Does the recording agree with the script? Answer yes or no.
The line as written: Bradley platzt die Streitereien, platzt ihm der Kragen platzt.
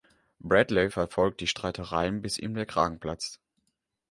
no